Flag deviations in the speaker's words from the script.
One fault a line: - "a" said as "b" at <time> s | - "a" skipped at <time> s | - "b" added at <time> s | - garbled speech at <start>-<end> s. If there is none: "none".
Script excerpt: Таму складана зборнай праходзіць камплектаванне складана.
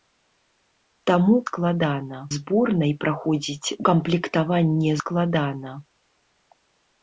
none